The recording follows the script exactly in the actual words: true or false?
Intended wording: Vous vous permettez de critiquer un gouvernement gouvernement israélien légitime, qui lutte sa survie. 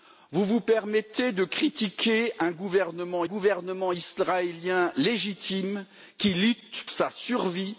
true